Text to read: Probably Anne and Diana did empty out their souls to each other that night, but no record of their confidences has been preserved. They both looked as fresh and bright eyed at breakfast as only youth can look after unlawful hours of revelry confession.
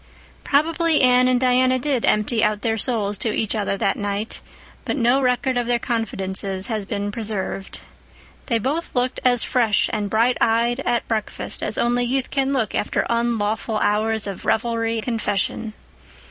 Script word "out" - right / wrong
right